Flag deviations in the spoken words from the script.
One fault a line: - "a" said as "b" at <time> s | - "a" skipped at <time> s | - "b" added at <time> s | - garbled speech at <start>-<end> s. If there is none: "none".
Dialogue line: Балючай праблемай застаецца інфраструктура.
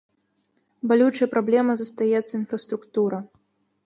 none